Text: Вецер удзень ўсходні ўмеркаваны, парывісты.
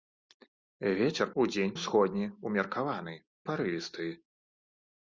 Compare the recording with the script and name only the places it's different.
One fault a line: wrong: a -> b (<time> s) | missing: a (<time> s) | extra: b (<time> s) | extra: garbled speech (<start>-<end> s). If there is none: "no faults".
no faults